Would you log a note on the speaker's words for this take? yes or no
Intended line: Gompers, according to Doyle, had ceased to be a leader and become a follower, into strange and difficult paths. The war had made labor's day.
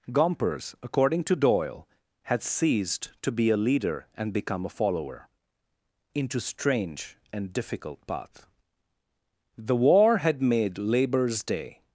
yes